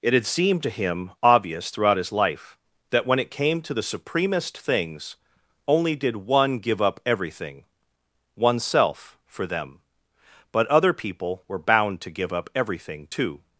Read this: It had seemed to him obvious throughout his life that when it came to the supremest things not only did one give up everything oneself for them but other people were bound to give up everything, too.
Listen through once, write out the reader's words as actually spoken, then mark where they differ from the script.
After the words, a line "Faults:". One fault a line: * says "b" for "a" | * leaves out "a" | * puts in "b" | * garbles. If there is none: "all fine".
It had seemed to him obvious throughout his life that when it came to the supremest things only did one give up everything oneself for them but other people were bound to give up everything, too.
Faults:
* leaves out "not"